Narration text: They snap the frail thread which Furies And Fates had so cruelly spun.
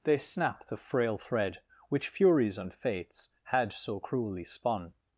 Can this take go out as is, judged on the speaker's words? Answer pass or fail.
pass